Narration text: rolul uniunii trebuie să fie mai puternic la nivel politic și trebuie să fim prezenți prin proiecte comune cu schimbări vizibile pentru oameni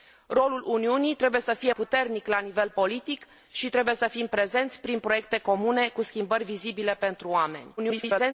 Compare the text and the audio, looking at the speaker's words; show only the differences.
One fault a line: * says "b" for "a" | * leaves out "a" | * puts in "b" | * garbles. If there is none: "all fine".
* leaves out "mai"
* garbles